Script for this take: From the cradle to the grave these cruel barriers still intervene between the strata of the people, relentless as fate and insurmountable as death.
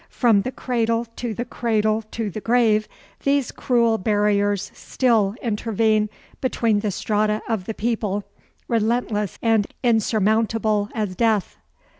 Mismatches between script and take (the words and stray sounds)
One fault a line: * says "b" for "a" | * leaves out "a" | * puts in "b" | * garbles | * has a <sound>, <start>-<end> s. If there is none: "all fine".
* puts in "cradle to the"
* leaves out "as fate"